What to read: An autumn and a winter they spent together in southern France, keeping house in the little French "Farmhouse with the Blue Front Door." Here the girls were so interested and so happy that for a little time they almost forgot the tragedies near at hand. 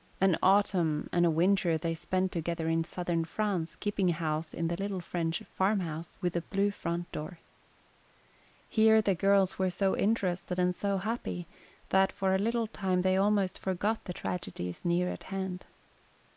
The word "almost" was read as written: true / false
true